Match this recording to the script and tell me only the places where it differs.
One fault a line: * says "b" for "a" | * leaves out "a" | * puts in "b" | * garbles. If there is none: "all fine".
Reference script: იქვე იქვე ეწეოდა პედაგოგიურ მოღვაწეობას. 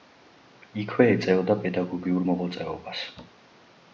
* leaves out "იქვე"